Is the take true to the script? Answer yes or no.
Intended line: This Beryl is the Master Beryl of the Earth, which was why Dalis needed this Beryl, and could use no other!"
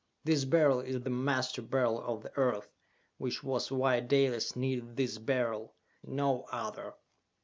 no